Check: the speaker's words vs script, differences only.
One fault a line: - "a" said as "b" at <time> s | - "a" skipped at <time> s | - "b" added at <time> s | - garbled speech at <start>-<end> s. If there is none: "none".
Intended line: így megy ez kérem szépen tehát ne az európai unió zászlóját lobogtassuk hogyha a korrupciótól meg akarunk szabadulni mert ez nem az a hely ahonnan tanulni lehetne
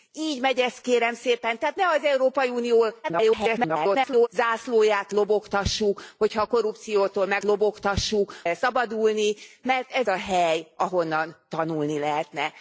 - garbled speech at 3.0-4.3 s
- "akarunk" said as "lobogtassuk" at 7.4 s
- "nem az" skipped at 10.1 s